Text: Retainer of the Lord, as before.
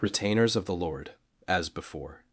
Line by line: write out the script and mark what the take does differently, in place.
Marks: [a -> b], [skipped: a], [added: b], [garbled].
[Retainer -> Retainers] of the Lord, as before.